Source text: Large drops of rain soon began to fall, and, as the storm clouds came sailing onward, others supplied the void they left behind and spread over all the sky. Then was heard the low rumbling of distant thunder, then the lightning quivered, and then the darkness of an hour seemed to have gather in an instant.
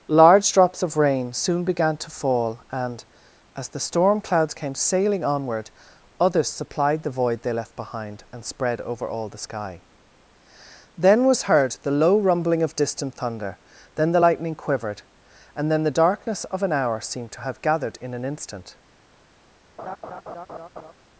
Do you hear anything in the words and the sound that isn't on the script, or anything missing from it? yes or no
yes